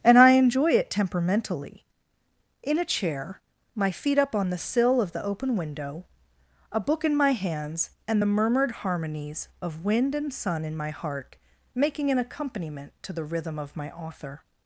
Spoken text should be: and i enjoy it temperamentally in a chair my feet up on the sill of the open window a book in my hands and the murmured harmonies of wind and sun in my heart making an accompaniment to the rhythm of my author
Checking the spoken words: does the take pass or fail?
pass